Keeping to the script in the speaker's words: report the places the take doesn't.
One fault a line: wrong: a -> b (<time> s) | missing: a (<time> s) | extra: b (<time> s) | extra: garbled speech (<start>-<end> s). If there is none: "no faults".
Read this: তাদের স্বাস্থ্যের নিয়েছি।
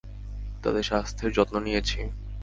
extra: যত্ন (1.3 s)